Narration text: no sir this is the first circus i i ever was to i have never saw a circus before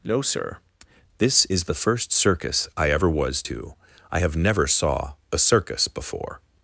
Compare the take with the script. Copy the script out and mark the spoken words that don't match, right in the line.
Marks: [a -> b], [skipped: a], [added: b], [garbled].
no sir this is the first circus i [skipped: i] ever was to i have never saw a circus before